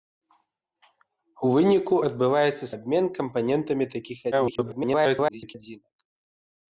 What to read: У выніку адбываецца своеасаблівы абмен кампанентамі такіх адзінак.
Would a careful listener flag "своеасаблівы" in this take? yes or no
yes